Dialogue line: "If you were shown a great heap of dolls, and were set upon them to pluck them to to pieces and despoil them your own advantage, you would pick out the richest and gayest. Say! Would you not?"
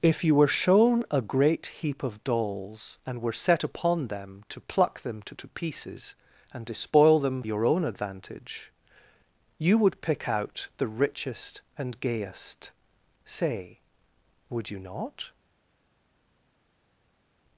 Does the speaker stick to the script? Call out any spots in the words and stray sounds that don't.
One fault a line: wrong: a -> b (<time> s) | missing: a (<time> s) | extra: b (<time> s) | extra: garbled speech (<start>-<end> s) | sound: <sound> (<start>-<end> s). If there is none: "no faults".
no faults